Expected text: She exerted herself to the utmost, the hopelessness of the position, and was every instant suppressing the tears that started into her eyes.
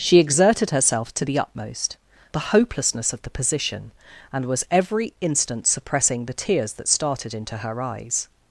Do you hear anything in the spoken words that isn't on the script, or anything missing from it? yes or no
no